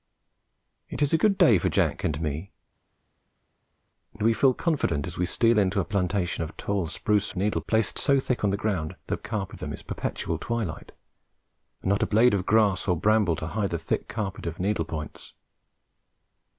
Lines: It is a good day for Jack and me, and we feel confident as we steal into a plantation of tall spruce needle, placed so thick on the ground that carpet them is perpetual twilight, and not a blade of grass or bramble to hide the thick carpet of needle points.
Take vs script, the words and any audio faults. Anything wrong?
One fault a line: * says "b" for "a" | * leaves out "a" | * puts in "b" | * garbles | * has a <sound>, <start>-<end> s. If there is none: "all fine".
all fine